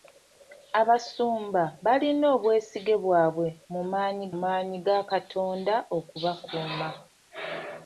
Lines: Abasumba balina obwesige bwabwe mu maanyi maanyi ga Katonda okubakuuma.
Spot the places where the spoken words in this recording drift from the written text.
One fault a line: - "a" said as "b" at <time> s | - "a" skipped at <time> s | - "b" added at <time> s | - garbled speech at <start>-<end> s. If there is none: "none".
none